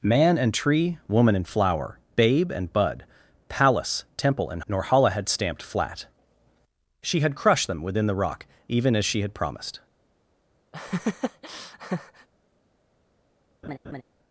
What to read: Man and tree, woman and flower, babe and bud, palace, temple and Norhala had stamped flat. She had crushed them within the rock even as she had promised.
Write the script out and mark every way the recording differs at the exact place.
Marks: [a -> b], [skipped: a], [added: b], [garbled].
Man and tree, woman and flower, babe and bud, palace, temple and Norhala had stamped flat. She had crushed them within the rock even as she had promised.